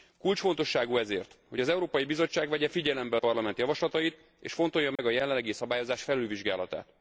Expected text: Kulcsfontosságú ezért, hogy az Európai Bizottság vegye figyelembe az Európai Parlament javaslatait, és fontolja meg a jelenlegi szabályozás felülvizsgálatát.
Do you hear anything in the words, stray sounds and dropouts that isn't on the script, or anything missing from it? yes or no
yes